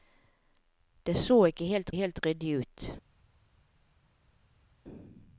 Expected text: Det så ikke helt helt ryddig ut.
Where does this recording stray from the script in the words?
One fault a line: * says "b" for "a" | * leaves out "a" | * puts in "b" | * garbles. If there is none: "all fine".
all fine